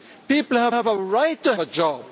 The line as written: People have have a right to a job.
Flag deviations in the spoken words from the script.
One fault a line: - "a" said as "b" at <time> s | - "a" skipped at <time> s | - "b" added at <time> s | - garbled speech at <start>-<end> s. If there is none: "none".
none